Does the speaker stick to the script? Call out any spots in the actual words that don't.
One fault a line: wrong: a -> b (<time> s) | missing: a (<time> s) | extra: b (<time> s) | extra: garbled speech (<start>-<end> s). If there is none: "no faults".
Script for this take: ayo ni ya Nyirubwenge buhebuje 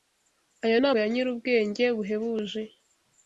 no faults